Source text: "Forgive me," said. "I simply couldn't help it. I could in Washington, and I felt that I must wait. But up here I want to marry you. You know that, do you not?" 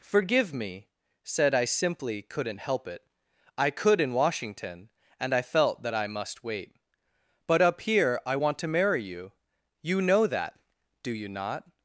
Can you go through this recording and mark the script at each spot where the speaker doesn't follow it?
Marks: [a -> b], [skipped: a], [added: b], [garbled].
"Forgive me," said. "I simply couldn't help it. I could in Washington, and I felt that I must wait. But up here I want to marry you. You know that, do you not?"